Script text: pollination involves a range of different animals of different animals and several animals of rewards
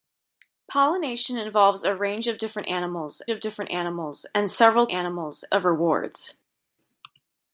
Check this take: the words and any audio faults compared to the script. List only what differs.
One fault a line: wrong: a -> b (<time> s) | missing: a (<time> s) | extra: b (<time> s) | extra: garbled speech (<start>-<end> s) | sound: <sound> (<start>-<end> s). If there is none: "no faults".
no faults